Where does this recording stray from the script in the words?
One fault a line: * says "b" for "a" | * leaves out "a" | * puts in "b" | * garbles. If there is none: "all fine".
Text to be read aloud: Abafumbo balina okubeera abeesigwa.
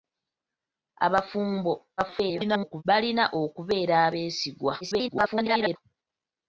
* garbles
* garbles